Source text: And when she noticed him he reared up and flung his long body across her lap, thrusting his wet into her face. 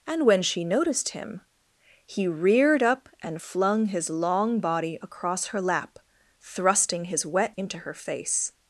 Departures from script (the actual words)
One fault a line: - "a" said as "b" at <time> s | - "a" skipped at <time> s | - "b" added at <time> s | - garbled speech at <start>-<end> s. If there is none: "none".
none